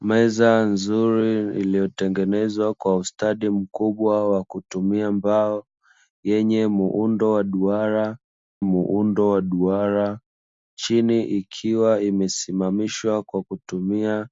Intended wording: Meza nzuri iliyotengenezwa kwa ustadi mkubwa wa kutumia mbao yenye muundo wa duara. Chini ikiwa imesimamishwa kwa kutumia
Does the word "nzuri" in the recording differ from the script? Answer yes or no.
no